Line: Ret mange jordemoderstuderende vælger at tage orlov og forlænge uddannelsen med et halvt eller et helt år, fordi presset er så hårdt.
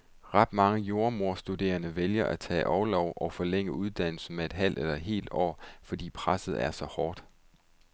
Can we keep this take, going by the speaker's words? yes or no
yes